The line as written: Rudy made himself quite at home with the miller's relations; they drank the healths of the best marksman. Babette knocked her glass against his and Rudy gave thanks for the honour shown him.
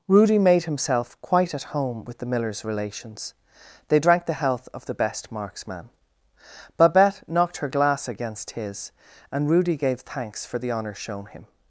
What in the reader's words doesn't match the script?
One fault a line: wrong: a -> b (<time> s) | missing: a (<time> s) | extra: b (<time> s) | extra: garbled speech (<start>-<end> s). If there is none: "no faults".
wrong: healths -> health (4.3 s)